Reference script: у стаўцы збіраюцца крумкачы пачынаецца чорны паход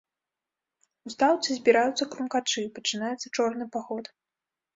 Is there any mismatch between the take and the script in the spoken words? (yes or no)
no